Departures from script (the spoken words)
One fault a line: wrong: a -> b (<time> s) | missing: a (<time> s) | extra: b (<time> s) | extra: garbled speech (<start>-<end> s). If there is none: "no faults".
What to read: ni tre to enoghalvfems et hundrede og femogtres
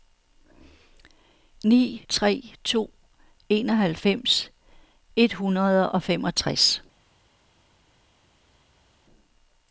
no faults